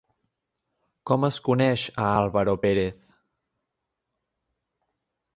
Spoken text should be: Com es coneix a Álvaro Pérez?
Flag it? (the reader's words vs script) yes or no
no